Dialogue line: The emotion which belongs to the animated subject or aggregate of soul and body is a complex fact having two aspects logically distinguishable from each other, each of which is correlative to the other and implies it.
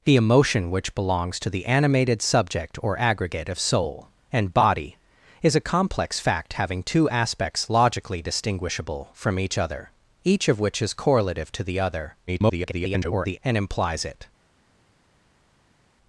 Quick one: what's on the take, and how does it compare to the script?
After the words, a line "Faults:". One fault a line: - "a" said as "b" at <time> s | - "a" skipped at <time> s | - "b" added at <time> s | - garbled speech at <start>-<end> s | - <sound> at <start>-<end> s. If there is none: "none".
The emotion which belongs to the animated subject or aggregate of soul and body is a complex fact having two aspects logically distinguishable from each other, each of which is correlative to the other [garbled] and implies it.
Faults:
- garbled speech at 12.3-13.4 s